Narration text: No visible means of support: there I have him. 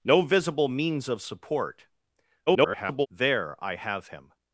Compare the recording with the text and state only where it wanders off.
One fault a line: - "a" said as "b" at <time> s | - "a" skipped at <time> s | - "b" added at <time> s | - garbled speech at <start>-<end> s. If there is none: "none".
- garbled speech at 2.5-3.1 s